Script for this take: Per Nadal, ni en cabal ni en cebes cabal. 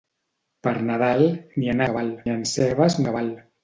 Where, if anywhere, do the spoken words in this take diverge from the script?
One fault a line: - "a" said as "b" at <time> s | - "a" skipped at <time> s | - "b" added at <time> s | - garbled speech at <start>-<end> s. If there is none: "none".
none